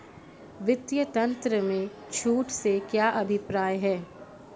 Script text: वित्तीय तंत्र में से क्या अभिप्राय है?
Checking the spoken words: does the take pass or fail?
fail